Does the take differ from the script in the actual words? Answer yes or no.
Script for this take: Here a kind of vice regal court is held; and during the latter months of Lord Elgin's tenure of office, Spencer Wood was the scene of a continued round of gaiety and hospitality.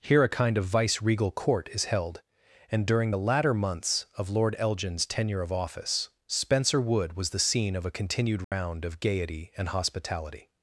no